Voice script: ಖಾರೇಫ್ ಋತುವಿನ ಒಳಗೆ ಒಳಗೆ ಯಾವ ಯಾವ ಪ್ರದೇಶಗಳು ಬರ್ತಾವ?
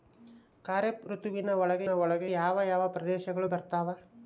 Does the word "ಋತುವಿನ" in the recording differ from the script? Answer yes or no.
no